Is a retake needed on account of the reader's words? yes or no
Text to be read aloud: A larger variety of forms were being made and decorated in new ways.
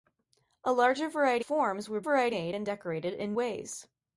yes